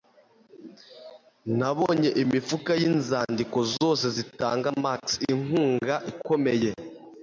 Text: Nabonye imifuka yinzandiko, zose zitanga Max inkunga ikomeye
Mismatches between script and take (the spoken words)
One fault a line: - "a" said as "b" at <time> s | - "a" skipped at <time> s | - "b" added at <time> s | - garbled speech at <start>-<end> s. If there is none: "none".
none